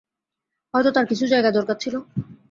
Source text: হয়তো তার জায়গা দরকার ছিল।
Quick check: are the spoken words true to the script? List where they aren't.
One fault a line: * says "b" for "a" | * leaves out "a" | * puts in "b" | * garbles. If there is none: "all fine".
* puts in "কিছু"